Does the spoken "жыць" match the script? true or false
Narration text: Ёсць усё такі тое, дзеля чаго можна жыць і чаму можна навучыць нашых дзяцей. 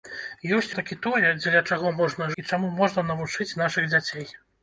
false